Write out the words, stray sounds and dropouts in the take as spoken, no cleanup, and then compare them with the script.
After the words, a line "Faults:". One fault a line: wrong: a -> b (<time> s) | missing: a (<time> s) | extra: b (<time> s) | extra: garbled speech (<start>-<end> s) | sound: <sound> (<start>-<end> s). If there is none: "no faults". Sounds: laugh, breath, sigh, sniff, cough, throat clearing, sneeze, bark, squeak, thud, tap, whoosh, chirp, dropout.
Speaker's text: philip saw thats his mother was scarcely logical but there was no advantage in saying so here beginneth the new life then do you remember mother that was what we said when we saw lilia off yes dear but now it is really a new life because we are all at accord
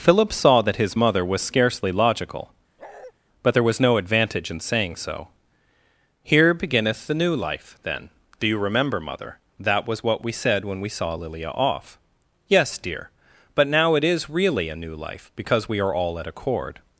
philip saw that his mother was scarcely logical but there was no advantage in saying so here beginneth the new life then do you remember mother that was what we said when we saw lilia off yes dear but now it is really a new life because we are all at accord
Faults:
wrong: thats -> that (0.6 s)
sound: bark (2.8-3.1 s)